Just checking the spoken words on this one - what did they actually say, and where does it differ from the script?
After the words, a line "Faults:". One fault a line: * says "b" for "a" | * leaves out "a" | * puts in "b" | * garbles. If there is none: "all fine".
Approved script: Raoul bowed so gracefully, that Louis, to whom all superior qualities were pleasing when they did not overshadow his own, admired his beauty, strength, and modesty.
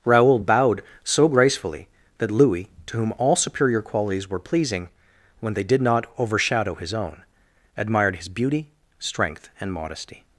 Raoul bowed so gracefully, that Louis, to whom all superior qualities were pleasing when they did not overshadow his own, admired his beauty, strength, and modesty.
Faults:
all fine